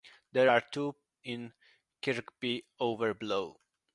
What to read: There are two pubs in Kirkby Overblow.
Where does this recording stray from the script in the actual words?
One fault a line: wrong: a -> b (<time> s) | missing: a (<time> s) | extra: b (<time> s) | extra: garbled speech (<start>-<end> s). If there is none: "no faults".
missing: pubs (0.9 s)